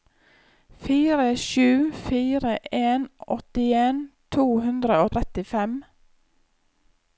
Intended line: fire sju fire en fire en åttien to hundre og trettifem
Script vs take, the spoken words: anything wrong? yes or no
yes